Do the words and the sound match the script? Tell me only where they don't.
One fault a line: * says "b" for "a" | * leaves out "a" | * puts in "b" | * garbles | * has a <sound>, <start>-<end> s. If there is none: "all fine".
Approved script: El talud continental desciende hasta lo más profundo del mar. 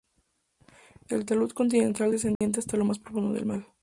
* has a dropout, 2.4-2.4 s